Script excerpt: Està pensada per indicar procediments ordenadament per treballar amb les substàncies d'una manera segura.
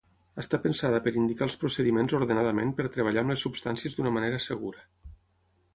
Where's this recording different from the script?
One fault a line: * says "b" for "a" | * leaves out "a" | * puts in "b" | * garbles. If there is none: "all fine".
* puts in "els"